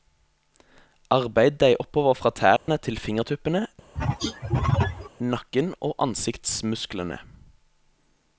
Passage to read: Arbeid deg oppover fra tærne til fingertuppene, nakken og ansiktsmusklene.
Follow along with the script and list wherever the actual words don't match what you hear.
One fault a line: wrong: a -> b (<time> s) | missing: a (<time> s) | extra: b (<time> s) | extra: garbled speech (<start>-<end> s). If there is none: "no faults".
no faults